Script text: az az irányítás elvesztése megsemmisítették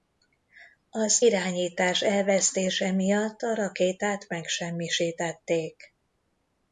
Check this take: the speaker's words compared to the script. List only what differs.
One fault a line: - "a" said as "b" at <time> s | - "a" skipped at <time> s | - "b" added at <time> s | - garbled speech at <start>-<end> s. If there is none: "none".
- "az" skipped at 1.2 s
- "miatt a rakétát" added at 2.9 s